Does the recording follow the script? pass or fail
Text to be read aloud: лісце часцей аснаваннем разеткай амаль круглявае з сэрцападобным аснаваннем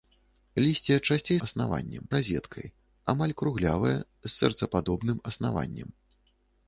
pass